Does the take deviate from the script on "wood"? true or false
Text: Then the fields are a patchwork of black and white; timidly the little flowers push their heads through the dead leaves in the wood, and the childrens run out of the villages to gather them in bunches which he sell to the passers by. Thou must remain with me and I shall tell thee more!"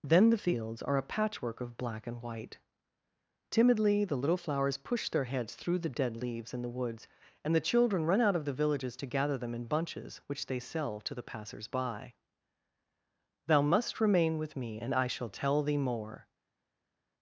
true